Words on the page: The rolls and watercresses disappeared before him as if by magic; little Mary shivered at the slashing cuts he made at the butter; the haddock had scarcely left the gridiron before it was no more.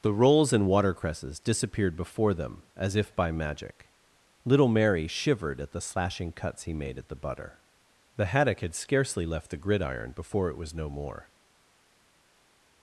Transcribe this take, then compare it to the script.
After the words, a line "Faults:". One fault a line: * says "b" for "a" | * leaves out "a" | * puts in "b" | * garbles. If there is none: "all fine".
The rolls and watercresses disappeared before them as if by magic; little Mary shivered at the slashing cuts he made at the butter; the haddock had scarcely left the gridiron before it was no more.
Faults:
* says "them" for "him"